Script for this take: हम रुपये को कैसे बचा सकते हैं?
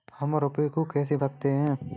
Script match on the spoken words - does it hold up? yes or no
no